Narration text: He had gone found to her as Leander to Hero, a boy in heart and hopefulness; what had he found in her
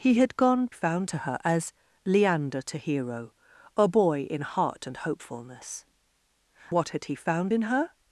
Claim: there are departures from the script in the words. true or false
false